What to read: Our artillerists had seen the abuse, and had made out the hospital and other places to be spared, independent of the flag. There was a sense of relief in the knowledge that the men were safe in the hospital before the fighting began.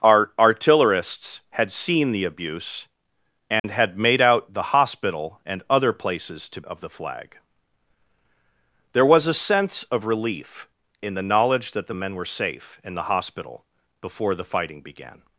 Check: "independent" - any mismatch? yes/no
yes